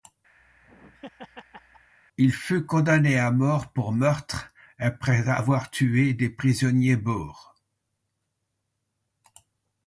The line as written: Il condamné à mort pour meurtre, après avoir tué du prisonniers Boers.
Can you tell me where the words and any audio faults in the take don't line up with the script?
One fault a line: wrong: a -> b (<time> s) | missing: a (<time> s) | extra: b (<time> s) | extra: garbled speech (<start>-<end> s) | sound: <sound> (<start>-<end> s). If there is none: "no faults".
sound: laugh (0.4-1.9 s)
extra: fut (2.3 s)
wrong: du -> des (6.1 s)